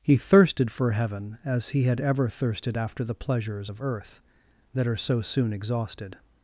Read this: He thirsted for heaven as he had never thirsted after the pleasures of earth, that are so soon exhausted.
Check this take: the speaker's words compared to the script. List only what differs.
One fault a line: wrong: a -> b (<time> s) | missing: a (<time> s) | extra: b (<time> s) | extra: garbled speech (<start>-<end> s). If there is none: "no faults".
wrong: never -> ever (2.0 s)